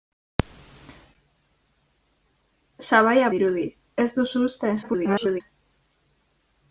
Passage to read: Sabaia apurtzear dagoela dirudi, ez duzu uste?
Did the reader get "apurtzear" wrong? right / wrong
wrong